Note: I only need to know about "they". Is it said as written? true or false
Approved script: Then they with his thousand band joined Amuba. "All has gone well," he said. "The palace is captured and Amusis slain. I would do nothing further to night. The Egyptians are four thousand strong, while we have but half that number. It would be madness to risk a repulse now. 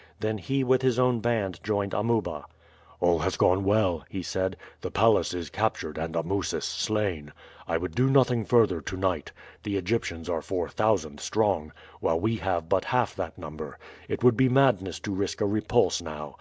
false